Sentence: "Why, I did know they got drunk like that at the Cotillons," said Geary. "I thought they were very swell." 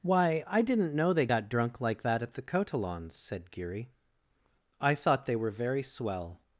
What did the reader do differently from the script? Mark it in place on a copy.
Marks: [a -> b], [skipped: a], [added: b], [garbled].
"Why, I [did -> didn't] know they got drunk like that at the Cotillons," said Geary. "I thought they were very swell."